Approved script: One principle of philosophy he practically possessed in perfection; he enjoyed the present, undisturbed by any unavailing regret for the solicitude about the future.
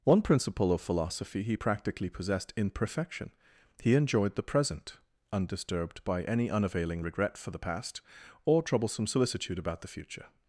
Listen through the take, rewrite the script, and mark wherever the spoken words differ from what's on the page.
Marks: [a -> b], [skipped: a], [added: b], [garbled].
One principle of philosophy he practically possessed in perfection; he enjoyed the present, undisturbed by any unavailing regret for the [added: past or troublesome] solicitude about the future.